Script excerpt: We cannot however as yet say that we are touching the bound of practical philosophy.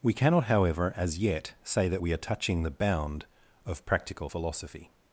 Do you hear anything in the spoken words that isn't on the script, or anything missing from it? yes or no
no